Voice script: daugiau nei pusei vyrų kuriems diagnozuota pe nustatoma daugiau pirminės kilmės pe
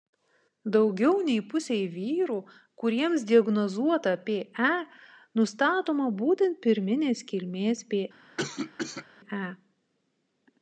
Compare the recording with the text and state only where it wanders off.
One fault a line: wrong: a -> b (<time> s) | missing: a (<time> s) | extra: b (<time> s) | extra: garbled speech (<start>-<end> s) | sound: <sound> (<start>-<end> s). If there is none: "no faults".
wrong: daugiau -> būtent (6.2 s)
sound: cough (8.4-9.1 s)